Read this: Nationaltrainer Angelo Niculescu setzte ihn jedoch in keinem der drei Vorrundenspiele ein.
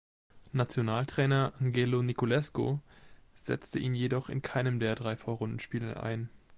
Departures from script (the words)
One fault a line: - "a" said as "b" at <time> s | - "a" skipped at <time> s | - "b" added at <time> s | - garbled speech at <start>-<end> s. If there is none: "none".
none